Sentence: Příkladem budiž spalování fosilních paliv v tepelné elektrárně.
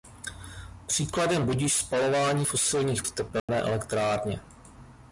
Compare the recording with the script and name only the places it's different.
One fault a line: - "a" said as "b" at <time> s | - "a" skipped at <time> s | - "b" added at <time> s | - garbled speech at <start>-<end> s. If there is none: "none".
- "paliv" skipped at 3.0 s